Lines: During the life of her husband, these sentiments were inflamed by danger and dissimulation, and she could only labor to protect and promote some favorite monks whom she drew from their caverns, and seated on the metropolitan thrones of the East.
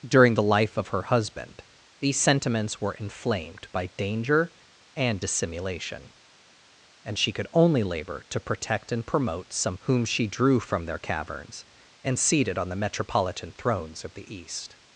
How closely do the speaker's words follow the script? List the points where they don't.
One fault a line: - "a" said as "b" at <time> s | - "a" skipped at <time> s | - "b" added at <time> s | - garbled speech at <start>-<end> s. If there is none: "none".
- "favorite monks" skipped at 9.8 s